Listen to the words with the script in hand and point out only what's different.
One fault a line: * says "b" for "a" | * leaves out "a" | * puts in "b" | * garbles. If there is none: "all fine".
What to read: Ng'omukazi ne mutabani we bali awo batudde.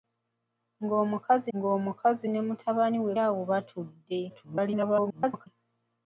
* puts in "ng'omukazi"
* leaves out "bali"
* garbles